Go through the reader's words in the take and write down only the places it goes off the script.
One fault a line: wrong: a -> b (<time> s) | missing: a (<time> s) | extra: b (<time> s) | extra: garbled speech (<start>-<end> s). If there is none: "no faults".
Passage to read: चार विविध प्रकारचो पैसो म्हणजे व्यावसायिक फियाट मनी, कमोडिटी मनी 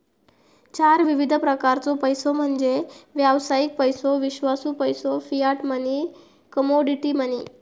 extra: पैसो विश्वासू पैसो (3.8 s)